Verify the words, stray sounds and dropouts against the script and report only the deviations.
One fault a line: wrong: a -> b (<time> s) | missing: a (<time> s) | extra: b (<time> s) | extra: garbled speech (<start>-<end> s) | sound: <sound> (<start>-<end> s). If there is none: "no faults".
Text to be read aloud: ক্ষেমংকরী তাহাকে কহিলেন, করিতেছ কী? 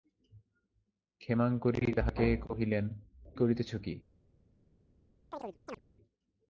sound: chirp (5.3-5.8 s)